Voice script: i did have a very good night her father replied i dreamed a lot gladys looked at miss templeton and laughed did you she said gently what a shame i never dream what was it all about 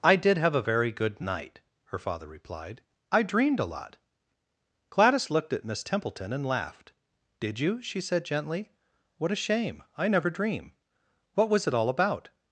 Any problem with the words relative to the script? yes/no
no